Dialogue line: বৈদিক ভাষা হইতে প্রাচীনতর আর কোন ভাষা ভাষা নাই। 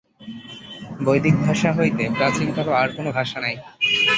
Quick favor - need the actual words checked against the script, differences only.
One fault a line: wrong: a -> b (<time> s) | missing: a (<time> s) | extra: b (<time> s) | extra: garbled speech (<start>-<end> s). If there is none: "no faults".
missing: ভাষা (3.4 s)